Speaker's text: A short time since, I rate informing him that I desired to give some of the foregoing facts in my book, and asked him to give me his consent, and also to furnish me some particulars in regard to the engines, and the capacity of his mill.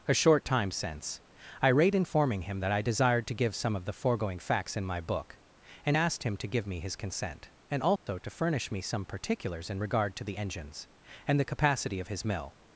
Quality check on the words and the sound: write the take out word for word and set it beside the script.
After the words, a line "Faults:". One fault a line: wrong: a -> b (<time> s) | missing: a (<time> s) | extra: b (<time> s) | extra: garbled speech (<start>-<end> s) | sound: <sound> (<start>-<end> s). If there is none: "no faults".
A short time since, I rate informing him that I desired to give some of the foregoing facts in my book, and asked him to give me his consent, and also to furnish me some particulars in regard to the engines, and the capacity of his mill.
Faults:
sound: dropout (8.0-8.1 s)